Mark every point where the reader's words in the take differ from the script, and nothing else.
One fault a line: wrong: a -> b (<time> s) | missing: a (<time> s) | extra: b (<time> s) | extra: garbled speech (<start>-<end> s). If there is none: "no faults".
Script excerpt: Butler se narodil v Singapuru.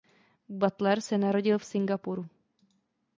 no faults